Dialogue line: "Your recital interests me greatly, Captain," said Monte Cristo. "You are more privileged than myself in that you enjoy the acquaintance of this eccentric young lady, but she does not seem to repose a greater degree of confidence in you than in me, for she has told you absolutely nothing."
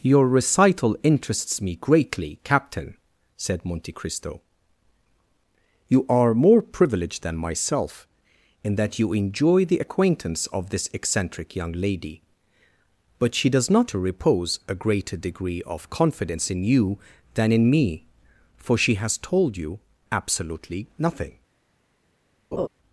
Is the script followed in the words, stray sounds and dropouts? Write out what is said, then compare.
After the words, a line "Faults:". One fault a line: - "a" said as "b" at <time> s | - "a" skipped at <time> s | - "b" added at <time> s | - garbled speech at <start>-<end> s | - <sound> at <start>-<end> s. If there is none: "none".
"Your recital interests me greatly, Captain," said Monte Cristo. "You are more privileged than myself in that you enjoy the acquaintance of this eccentric young lady, but she does not to repose a greater degree of confidence in you than in me, for she has told you absolutely nothing."
Faults:
- "seem" skipped at 13.9 s
- laugh at 22.5-22.7 s